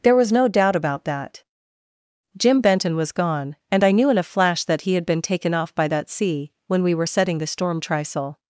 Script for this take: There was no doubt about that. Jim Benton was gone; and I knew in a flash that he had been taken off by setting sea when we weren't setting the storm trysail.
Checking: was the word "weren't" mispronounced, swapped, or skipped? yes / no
yes